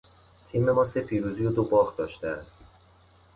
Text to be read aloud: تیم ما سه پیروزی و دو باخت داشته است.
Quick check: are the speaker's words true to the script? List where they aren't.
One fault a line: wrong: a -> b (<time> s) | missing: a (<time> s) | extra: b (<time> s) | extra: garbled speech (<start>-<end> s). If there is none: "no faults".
no faults